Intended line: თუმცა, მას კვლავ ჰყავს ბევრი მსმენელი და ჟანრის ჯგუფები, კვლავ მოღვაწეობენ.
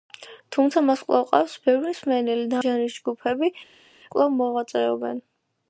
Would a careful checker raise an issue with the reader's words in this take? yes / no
no